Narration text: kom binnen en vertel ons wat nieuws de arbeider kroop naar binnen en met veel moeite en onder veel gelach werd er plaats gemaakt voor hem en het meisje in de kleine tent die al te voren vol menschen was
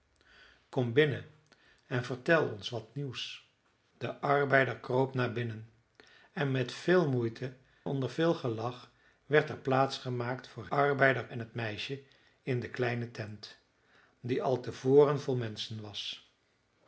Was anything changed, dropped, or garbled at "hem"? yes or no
yes